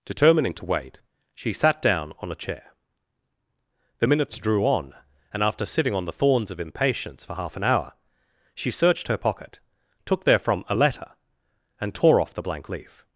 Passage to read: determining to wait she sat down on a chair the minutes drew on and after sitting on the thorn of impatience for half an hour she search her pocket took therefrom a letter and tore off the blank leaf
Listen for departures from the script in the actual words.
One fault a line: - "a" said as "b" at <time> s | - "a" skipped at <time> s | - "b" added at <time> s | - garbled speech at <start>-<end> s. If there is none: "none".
- "thorn" said as "thorns" at 6.1 s
- "search" said as "searched" at 8.7 s